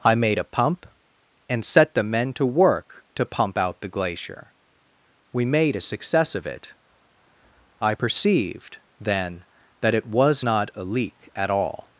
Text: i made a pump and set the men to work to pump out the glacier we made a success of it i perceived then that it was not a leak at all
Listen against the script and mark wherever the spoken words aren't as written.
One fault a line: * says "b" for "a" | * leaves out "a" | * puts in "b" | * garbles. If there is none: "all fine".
all fine